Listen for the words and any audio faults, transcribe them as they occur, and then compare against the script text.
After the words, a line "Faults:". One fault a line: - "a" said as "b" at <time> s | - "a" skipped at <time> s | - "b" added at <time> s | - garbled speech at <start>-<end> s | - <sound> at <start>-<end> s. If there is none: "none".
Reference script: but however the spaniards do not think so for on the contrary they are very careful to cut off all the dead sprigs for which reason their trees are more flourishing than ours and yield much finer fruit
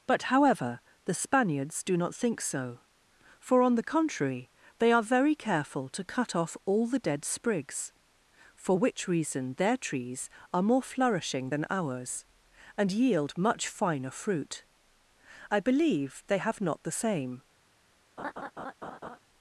but however the spaniards do not think so for on the contrary they are very careful to cut off all the dead sprigs for which reason their trees are more flourishing than ours and yield much finer fruit i believe they have not the same
Faults:
- "i believe they have not the same" added at 15.5 s
- laugh at 18.2-19.2 s